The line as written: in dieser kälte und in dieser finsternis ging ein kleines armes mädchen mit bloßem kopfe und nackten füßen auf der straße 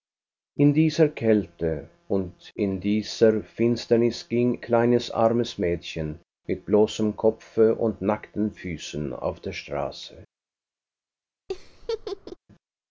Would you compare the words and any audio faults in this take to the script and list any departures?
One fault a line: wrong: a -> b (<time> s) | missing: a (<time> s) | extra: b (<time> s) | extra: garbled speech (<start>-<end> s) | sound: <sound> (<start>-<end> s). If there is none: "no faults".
missing: ein (4.6 s)
sound: laugh (11.5-12.4 s)